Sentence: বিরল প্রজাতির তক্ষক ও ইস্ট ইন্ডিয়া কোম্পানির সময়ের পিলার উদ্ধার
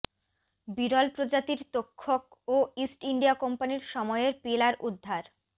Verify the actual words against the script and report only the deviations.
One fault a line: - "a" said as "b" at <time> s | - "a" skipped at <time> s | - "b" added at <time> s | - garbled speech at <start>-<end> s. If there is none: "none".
none